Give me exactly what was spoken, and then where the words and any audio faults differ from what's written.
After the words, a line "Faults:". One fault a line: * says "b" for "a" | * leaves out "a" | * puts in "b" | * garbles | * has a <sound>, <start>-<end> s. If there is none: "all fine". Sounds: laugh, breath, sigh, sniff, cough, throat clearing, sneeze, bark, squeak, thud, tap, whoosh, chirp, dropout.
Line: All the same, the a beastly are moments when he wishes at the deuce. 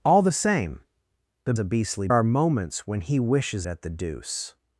All the same, the a beastly are moments when he wishes at the deuce.
Faults:
all fine